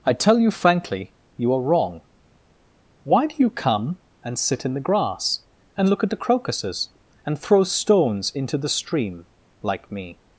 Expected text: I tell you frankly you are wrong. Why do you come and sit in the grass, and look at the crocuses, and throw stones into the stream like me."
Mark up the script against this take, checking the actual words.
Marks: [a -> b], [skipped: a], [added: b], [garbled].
I tell you frankly you are wrong. Why do you come and sit in the grass, and look at the crocuses, and throw stones into the stream like me."